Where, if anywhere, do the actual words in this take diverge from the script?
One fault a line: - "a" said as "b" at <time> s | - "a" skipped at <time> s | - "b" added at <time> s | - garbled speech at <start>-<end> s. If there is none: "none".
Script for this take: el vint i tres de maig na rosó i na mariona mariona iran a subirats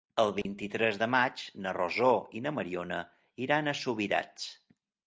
- "mariona" skipped at 3.0 s